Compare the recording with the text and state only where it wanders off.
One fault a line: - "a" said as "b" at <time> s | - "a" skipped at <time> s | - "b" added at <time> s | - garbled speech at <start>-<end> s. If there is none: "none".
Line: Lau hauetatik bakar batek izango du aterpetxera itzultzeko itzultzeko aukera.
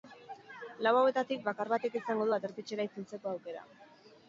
- "itzultzeko" skipped at 3.4 s